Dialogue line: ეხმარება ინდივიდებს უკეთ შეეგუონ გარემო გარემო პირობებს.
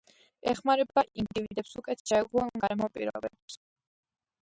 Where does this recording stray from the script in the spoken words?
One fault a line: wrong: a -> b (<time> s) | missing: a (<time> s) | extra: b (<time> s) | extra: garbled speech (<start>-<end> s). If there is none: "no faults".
missing: გარემო (2.9 s)